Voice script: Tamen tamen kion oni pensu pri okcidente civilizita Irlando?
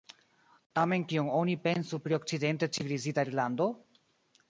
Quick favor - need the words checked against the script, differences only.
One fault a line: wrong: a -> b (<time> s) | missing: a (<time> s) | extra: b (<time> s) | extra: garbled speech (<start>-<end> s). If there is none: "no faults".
missing: tamen (1.0 s)